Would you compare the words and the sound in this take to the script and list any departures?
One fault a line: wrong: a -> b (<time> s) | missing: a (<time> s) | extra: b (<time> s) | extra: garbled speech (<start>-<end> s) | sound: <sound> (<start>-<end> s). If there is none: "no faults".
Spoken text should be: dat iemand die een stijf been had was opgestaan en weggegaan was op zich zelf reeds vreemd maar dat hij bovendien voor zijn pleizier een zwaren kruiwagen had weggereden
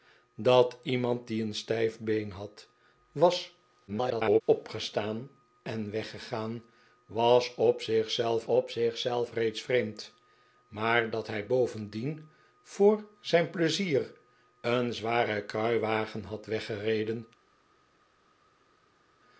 extra: garbled speech (3.9-4.4 s)
extra: op zich zelf (8.4 s)